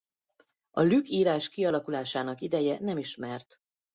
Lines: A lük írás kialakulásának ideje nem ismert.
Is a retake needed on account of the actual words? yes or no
no